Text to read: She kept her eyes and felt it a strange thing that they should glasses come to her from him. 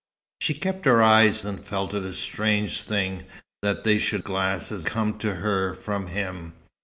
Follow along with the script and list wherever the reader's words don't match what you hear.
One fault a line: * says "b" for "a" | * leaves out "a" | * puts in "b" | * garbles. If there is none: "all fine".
all fine